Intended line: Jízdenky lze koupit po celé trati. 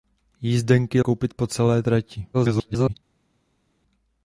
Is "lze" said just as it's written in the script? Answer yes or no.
no